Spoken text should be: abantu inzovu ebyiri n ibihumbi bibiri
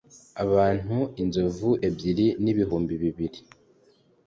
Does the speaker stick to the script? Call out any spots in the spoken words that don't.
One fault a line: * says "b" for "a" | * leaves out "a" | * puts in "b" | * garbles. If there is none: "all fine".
all fine